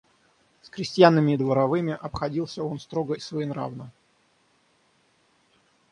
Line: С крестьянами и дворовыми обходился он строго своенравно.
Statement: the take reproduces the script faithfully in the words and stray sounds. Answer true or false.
true